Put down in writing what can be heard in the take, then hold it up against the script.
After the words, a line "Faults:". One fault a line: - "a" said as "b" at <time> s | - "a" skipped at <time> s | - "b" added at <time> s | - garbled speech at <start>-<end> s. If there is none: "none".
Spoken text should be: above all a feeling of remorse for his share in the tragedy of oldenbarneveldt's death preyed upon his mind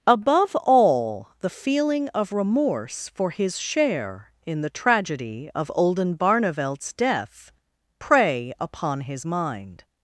above all the feeling of remorse for his share in the tragedy of oldenbarneveldt's death prey upon his mind
Faults:
- "a" said as "the" at 1.4 s
- "preyed" said as "prey" at 8.0 s